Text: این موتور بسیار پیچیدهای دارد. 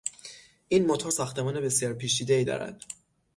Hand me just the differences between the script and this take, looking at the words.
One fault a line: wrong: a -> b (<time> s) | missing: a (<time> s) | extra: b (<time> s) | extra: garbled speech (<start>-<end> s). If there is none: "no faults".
extra: ساختمان (1.1 s)